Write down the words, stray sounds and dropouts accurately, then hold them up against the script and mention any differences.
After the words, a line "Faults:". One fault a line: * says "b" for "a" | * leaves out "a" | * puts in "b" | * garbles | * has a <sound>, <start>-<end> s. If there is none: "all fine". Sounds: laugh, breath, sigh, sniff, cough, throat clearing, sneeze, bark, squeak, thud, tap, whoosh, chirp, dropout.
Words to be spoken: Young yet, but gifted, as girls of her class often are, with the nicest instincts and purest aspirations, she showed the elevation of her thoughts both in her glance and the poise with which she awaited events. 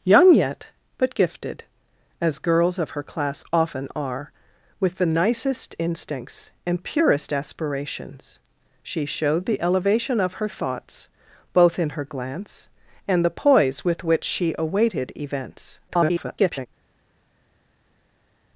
Young yet, but gifted, as girls of her class often are, with the nicest instincts and purest aspirations, she showed the elevation of her thoughts both in her glance and the poise with which she awaited events. [garbled]
Faults:
* garbles